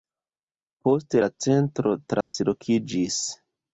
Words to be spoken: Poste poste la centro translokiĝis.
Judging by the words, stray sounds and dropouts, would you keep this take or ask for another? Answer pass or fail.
fail